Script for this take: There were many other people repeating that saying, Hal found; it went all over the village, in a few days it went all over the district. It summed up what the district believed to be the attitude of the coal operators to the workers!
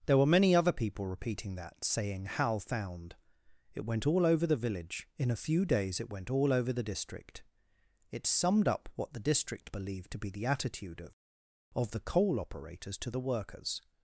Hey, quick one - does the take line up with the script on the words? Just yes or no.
no